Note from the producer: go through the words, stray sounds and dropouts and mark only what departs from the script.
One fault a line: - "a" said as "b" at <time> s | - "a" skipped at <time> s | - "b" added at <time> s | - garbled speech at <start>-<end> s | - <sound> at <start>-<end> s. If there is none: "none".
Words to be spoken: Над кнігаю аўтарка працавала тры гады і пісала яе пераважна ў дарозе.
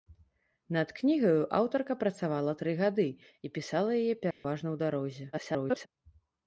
- dropout at 4.3-4.4 s
- garbled speech at 5.3-5.9 s